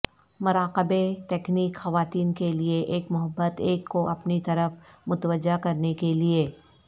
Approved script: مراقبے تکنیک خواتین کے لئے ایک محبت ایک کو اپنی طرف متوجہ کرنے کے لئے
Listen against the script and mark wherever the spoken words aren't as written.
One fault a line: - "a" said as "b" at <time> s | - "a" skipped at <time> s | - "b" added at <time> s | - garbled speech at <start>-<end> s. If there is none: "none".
none